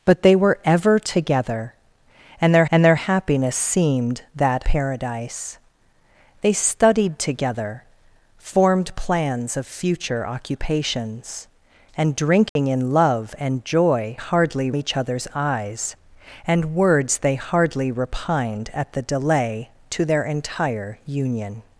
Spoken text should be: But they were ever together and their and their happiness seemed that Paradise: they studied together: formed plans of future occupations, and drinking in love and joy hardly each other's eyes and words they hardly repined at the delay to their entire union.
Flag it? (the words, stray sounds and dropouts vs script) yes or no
yes